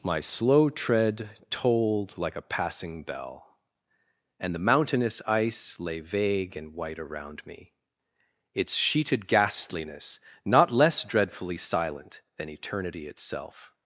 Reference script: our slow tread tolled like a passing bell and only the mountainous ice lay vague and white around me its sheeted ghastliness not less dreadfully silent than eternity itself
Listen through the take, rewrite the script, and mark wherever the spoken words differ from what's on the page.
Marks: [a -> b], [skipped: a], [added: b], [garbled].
[our -> my] slow tread tolled like a passing bell and [skipped: only] the mountainous ice lay vague and white around me its sheeted ghastliness not less dreadfully silent than eternity itself